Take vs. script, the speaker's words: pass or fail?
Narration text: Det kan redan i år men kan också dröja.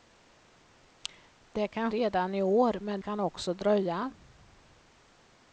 pass